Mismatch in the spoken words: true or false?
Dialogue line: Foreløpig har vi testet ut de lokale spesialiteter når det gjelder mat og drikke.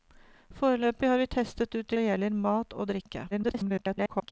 true